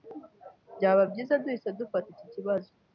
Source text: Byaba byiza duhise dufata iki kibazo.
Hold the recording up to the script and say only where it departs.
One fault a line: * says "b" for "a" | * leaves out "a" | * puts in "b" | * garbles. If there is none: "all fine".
all fine